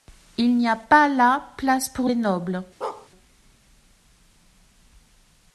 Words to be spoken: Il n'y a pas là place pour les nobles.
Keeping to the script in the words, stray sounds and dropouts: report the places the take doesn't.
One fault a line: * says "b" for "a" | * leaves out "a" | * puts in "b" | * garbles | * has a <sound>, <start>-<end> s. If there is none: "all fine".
* has a bark, 2.8-3.1 s